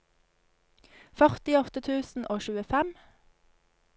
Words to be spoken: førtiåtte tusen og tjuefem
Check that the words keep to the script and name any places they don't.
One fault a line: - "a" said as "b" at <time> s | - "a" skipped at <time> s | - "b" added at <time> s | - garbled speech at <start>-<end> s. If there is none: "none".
none